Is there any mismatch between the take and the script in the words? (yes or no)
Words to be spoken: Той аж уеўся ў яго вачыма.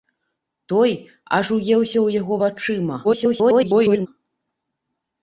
yes